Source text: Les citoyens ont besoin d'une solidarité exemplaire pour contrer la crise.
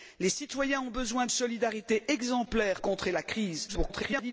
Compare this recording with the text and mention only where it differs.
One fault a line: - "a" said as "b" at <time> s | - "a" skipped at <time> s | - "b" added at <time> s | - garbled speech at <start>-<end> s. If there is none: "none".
- "d'une" skipped at 1.2 s
- "pour" skipped at 2.8 s
- garbled speech at 3.7-4.3 s